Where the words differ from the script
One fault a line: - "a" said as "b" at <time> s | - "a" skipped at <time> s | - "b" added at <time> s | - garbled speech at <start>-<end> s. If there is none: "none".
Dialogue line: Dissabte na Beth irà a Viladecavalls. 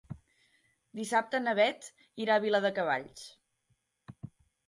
none